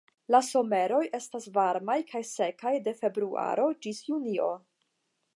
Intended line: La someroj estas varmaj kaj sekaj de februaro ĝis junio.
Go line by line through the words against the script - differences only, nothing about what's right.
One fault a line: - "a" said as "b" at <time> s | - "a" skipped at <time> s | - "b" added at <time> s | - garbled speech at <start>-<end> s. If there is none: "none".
none